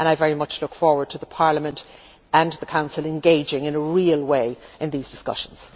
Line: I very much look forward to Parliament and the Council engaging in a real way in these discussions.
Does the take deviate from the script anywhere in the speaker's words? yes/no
no